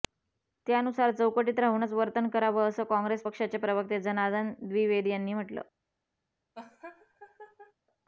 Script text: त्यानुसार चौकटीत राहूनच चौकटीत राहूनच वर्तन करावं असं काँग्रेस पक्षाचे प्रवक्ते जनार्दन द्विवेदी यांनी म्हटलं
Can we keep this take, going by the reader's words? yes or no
no